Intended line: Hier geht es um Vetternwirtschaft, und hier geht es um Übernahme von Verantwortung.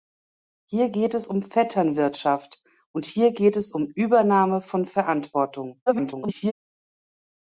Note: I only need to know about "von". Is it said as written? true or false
true